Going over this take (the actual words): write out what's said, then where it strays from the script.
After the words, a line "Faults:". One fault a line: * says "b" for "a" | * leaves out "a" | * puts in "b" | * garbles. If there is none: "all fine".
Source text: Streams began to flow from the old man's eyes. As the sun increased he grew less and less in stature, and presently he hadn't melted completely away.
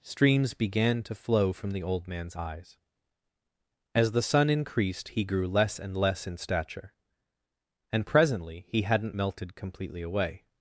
Streams began to flow from the old man's eyes. As the sun increased he grew less and less in stature, and presently he hadn't melted completely away.
Faults:
all fine